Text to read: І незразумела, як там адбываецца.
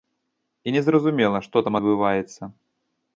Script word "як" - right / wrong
wrong